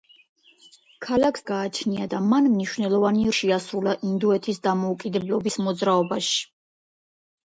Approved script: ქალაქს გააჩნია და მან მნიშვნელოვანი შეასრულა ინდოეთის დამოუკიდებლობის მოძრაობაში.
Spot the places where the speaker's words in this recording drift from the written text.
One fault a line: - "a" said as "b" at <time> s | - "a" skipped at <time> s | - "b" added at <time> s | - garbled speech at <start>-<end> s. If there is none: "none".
none